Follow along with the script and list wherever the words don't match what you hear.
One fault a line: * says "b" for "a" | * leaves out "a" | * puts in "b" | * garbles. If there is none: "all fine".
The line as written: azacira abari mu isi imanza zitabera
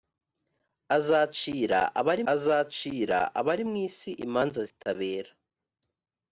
* puts in "azacira abari"